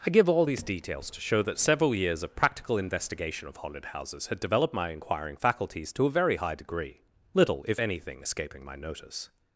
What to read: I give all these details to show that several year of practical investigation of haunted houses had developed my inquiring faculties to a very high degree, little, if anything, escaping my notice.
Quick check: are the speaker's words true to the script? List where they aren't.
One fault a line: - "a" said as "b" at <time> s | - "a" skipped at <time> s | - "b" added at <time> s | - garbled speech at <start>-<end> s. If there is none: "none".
- "year" said as "years" at 1.9 s